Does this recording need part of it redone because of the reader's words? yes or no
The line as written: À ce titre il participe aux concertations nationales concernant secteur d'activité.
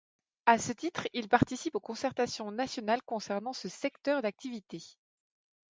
yes